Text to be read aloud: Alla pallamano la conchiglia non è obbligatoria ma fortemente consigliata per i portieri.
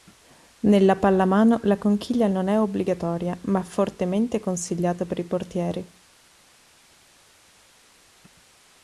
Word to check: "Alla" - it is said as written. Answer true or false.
false